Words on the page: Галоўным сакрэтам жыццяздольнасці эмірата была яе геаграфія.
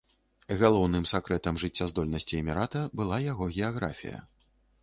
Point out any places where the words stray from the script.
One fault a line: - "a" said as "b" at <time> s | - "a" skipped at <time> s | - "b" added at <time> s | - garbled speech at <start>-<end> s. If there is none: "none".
- "яе" said as "яго" at 3.3 s